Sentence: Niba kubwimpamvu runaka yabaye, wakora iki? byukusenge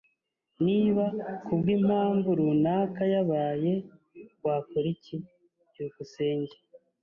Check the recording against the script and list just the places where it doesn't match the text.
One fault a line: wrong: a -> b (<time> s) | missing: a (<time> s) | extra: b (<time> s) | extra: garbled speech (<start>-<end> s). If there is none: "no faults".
no faults